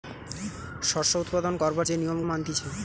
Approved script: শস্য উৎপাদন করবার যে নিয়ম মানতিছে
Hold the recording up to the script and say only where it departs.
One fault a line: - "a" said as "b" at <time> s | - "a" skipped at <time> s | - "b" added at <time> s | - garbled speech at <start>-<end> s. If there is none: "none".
none